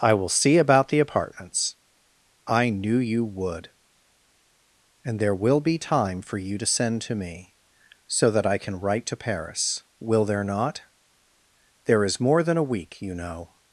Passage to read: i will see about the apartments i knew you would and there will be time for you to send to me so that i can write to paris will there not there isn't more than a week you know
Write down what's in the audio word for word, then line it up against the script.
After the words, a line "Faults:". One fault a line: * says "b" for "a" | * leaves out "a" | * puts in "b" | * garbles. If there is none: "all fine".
i will see about the apartments i knew you would and there will be time for you to send to me so that i can write to paris will there not there is more than a week you know
Faults:
* says "is" for "isn't"